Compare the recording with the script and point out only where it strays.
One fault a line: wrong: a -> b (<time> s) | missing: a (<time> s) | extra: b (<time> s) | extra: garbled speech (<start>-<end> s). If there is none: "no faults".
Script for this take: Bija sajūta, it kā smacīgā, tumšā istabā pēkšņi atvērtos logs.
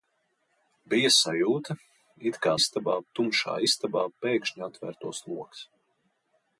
wrong: smacīgā -> istabā (2.6 s)